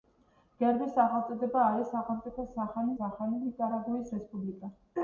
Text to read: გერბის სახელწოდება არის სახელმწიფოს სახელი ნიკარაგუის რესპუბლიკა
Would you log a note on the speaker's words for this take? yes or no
yes